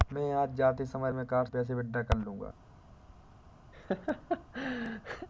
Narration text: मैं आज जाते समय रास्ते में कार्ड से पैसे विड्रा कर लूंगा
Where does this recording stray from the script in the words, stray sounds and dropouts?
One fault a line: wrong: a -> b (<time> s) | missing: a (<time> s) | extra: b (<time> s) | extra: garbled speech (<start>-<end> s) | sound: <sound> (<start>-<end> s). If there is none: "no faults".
missing: रास्ते (1.1 s)
missing: से (1.5 s)
sound: laugh (3.7-5.3 s)